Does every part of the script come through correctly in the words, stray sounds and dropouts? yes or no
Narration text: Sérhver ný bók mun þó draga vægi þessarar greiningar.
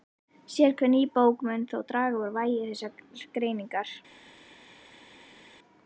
no